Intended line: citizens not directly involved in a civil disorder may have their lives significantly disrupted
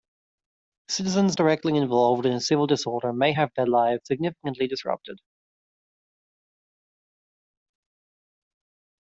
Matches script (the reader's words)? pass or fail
fail